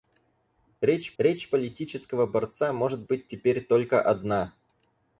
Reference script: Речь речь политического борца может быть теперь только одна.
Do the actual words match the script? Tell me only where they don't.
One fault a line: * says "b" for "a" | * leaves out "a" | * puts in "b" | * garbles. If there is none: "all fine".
all fine